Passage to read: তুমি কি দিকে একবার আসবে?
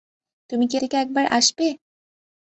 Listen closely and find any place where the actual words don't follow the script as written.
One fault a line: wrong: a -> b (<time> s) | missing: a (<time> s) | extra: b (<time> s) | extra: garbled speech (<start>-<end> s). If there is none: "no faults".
no faults